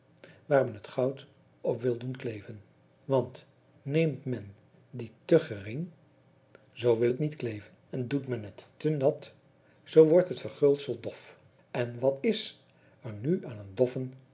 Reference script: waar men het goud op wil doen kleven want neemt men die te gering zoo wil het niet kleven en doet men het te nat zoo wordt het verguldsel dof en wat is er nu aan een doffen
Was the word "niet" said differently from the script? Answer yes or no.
no